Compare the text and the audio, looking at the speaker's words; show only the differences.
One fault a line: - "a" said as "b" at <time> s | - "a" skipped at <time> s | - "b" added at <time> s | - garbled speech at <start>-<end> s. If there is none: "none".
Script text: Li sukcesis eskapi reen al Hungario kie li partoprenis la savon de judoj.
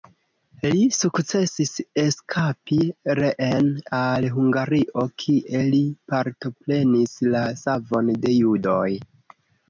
none